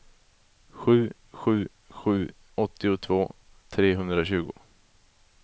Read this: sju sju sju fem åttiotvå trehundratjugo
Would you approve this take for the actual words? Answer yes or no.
no